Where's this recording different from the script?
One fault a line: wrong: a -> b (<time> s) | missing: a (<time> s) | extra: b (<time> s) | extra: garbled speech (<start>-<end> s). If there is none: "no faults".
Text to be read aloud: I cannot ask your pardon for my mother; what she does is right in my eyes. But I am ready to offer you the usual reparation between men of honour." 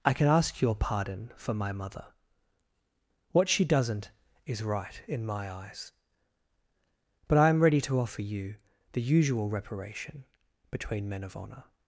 wrong: cannot -> can (0.1 s)
wrong: does -> doesn't (3.6 s)